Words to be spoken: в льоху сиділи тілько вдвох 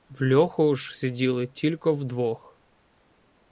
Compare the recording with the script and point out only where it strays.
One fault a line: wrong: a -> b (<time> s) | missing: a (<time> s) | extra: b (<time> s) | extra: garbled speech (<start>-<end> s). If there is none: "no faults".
extra: ж (0.8 s)